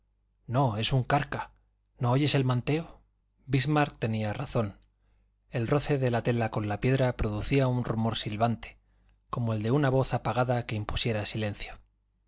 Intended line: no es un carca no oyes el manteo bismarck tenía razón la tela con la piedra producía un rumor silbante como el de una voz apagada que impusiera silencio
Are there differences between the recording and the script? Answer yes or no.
yes